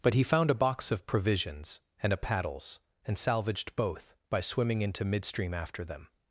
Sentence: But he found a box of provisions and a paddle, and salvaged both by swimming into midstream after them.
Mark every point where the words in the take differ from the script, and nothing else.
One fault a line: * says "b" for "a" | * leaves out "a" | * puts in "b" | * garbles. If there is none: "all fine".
* says "paddles" for "paddle"